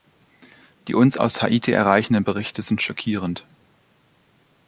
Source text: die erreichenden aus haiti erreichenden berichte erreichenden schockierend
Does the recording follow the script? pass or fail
fail